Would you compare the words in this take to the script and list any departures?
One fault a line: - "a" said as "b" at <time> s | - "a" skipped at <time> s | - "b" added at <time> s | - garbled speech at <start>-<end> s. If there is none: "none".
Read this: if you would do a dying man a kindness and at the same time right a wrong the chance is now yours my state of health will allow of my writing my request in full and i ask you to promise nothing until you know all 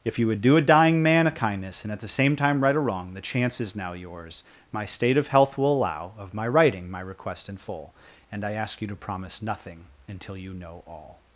none